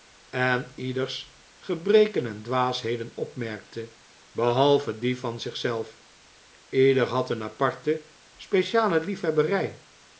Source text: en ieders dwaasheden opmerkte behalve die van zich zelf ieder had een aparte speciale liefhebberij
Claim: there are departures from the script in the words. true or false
true